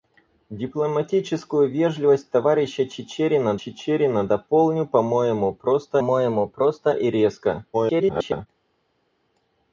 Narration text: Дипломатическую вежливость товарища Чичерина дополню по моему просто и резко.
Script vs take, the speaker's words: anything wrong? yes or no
yes